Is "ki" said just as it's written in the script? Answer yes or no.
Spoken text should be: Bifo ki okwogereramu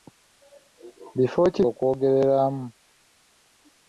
yes